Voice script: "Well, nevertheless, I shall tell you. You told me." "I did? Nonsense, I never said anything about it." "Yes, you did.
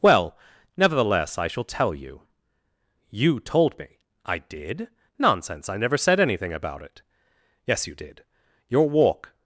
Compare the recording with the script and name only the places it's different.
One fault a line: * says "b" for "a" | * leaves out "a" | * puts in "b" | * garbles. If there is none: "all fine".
* puts in "Your walk"